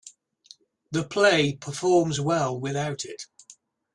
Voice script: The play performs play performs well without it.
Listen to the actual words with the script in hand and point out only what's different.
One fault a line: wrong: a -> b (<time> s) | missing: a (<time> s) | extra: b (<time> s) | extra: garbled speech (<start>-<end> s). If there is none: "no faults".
missing: play performs (2.2 s)